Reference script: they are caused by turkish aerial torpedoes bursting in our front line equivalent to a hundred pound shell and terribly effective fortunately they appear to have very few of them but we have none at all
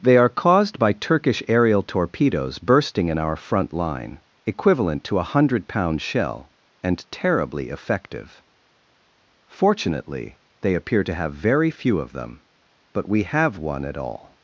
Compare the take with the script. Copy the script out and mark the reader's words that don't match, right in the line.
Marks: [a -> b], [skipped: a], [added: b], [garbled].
they are caused by turkish aerial torpedoes bursting in our front line equivalent to a hundred pound shell and terribly effective fortunately they appear to have very few of them but we have [none -> one] at all